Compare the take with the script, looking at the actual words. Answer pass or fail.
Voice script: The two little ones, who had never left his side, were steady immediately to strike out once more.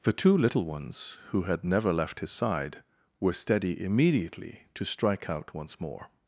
pass